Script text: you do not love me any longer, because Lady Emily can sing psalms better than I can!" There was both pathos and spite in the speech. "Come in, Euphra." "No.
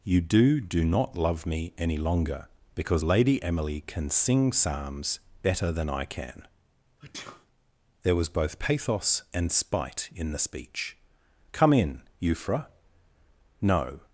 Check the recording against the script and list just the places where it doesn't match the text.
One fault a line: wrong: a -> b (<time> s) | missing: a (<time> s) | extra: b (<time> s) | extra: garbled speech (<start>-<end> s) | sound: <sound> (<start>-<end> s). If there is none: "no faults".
extra: do (0.6 s)
sound: sneeze (7.0-7.5 s)